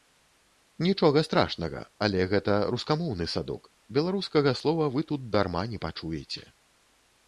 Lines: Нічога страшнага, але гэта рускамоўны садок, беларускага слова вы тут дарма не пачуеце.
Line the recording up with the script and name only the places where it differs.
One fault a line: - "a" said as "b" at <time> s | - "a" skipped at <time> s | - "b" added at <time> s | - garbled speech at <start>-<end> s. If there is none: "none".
none